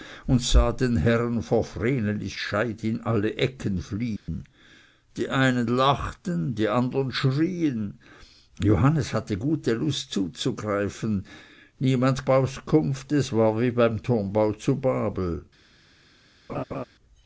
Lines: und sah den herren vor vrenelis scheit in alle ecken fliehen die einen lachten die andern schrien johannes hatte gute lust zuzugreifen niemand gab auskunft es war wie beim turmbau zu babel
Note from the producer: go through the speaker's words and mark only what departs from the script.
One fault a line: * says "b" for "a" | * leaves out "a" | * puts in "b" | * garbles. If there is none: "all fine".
* leaves out "gab"